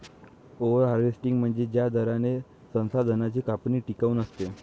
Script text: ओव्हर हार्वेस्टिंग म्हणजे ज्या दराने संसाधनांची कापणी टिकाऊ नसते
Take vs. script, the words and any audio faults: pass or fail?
pass